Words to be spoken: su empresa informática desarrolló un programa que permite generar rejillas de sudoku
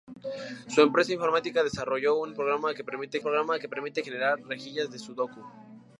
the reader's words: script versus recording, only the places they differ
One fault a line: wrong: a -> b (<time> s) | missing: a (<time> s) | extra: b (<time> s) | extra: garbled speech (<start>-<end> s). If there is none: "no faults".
extra: programa que permite (3.2 s)